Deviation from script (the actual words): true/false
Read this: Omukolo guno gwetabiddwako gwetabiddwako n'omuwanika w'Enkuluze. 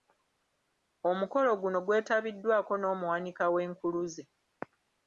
true